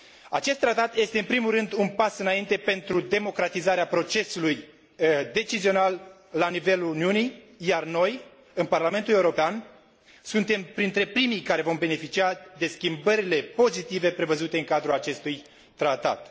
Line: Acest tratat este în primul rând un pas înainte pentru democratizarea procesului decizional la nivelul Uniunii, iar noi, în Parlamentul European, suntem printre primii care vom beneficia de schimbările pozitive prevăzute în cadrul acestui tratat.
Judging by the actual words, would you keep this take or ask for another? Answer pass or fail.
pass